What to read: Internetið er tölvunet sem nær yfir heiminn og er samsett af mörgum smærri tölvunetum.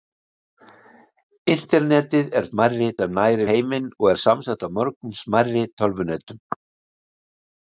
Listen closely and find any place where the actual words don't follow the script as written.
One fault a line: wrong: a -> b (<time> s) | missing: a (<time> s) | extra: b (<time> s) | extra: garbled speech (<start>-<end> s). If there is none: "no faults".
wrong: tölvunet -> smærri (2.5 s)
missing: yfir (3.4 s)